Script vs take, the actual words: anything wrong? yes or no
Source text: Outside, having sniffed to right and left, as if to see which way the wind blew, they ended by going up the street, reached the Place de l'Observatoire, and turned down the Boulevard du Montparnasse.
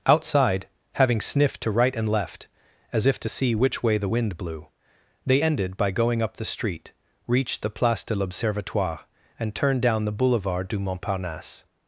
no